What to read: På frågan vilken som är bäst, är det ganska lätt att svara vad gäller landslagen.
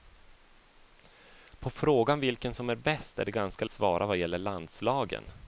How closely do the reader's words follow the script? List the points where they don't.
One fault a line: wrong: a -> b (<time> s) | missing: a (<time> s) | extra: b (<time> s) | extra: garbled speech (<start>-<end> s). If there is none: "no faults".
missing: lätt att (3.6 s)